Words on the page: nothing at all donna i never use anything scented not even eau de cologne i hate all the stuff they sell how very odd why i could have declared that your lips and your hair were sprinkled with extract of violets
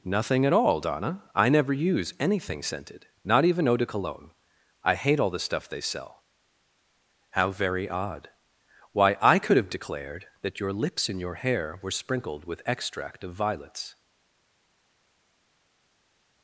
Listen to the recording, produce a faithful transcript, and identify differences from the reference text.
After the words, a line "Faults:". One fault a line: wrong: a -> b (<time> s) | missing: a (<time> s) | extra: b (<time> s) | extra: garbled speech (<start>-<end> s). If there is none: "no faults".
nothing at all donna i never use anything scented not even eau de cologne i hate all the stuff they sell how very odd why i could have declared that your lips and your hair were sprinkled with extract of violets
Faults:
no faults